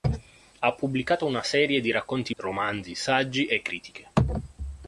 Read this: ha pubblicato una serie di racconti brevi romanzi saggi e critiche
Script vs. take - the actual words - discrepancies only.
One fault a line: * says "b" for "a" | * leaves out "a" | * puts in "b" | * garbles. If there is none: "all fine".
* leaves out "brevi"